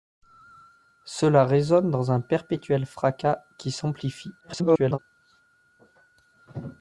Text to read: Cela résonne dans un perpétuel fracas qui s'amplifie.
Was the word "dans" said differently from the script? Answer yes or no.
no